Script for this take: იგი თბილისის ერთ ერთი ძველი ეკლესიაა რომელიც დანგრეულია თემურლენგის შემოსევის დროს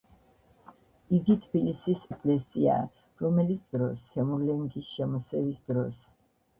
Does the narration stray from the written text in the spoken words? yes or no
yes